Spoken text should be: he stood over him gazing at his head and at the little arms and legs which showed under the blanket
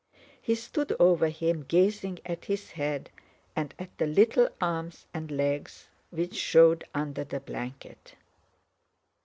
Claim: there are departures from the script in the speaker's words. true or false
false